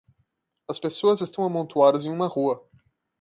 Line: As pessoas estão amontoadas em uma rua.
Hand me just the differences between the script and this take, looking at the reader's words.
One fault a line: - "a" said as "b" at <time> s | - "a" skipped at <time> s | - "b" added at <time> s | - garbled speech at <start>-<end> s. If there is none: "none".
none